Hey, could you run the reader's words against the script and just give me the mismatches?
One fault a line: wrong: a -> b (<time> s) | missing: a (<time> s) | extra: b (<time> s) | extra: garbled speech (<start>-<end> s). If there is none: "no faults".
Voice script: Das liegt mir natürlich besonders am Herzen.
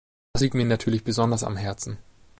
no faults